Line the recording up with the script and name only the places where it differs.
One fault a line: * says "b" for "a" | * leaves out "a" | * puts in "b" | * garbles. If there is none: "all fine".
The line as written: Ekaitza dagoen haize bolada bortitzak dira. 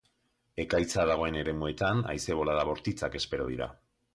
* puts in "eremuetan"
* puts in "espero"